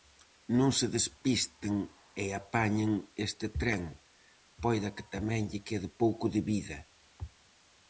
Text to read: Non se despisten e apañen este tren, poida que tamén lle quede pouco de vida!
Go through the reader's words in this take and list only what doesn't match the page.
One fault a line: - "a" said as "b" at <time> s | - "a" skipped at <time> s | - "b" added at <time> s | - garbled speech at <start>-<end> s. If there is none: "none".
none